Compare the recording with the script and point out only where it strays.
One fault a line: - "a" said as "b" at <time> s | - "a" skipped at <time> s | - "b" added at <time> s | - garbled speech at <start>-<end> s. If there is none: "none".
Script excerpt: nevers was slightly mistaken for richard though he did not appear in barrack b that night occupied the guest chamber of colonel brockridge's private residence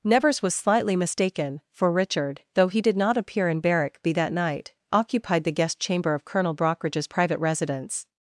none